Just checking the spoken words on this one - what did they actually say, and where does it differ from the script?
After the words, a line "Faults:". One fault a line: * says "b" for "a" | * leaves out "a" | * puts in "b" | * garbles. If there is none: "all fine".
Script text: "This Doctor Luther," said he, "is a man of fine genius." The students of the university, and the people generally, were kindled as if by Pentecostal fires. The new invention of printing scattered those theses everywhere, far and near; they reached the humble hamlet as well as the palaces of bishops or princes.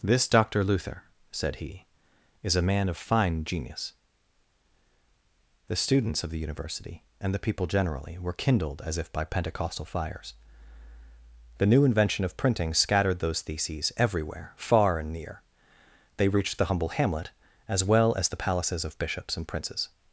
"This Doctor Luther," said he, "is a man of fine genius." The students of the university, and the people generally, were kindled as if by Pentecostal fires. The new invention of printing scattered those theses everywhere, far and near; they reached the humble hamlet as well as the palaces of bishops and princes.
Faults:
* says "and" for "or"